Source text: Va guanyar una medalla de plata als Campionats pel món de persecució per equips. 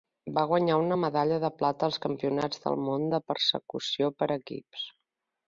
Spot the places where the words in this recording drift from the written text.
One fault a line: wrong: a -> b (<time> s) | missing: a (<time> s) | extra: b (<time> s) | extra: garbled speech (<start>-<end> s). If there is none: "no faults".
wrong: pel -> del (2.7 s)